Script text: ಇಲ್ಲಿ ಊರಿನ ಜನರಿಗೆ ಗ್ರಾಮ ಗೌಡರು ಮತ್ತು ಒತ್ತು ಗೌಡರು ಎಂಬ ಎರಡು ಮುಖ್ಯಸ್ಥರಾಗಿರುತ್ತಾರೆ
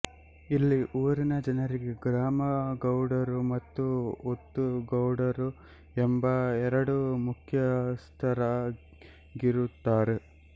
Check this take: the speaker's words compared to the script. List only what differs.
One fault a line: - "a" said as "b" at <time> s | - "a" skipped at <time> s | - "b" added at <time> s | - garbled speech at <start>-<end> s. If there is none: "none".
none